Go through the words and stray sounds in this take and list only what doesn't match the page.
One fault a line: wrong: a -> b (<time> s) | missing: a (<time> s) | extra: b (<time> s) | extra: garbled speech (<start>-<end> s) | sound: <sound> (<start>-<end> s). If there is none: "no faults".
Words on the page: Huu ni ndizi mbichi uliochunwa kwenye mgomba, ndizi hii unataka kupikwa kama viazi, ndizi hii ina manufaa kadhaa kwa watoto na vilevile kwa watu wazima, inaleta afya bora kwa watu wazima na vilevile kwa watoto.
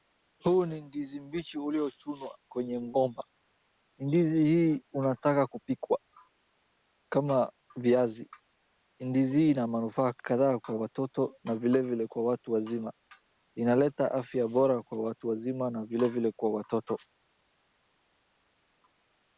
no faults